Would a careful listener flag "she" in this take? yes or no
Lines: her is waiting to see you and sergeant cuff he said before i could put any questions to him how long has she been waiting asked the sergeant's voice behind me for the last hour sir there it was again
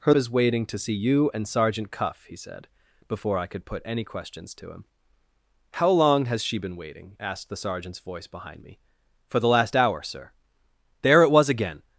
no